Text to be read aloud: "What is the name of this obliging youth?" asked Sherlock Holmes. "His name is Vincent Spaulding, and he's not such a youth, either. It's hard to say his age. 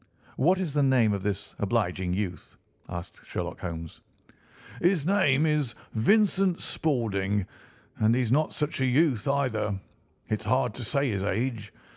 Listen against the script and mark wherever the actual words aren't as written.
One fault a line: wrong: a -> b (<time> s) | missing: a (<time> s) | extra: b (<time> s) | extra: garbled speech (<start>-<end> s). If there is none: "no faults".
no faults